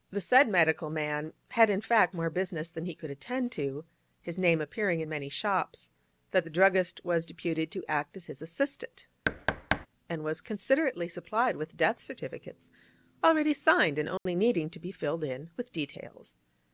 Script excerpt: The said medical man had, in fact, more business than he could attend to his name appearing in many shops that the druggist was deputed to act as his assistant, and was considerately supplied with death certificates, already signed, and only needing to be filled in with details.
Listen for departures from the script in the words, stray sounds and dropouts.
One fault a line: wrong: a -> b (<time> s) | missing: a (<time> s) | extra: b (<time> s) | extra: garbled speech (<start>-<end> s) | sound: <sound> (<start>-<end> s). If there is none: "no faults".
sound: thud (9.3-9.9 s)
sound: dropout (14.2-14.3 s)